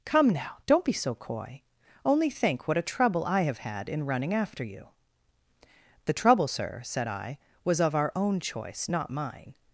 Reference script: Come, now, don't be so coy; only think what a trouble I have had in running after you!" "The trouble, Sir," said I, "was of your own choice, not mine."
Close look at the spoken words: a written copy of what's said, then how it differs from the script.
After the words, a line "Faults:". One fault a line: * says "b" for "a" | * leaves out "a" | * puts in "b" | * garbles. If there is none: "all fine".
Come, now, don't be so coy; only think what a trouble I have had in running after you!" "The trouble, Sir," said I, "was of our own choice, not mine."
Faults:
* says "our" for "your"